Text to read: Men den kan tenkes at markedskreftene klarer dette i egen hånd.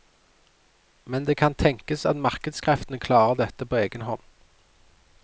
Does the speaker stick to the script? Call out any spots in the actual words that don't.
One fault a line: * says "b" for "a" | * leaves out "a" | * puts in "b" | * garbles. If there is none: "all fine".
* says "det" for "den"
* says "på" for "i"